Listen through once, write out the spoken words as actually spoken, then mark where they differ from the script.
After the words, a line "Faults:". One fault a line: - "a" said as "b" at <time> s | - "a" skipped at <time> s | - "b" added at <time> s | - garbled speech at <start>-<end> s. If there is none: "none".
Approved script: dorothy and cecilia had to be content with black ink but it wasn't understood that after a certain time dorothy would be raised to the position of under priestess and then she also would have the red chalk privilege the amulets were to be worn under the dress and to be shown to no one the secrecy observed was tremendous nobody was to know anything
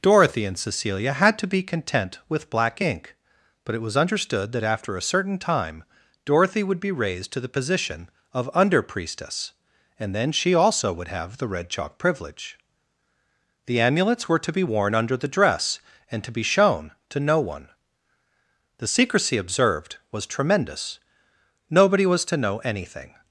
dorothy and cecilia had to be content with black ink but it was understood that after a certain time dorothy would be raised to the position of under priestess and then she also would have the red chalk privilege the amulets were to be worn under the dress and to be shown to no one the secrecy observed was tremendous nobody was to know anything
Faults:
- "wasn't" said as "was" at 3.8 s